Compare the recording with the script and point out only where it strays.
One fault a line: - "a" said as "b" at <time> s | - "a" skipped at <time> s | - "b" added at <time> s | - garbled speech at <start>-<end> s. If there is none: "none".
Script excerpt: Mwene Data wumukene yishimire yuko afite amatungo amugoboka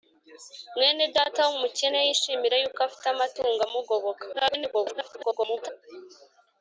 - garbled speech at 4.3-5.7 s